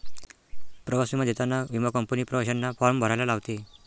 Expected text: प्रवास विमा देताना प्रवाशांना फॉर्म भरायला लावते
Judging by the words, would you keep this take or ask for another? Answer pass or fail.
fail